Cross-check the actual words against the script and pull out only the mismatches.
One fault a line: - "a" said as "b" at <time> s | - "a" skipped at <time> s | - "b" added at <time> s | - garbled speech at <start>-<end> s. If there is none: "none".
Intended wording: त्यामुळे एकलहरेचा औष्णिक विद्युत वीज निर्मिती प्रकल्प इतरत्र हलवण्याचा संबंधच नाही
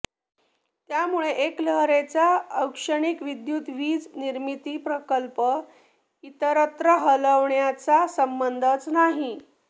none